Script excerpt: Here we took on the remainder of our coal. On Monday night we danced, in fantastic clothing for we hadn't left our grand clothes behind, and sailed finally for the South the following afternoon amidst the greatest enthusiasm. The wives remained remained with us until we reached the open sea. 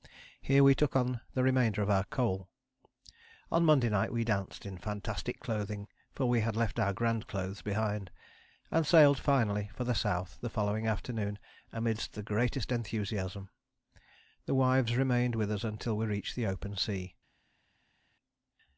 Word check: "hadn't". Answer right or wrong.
wrong